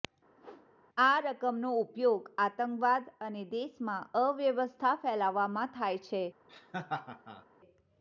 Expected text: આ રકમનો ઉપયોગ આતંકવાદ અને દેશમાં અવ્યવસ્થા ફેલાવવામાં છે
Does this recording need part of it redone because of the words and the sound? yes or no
yes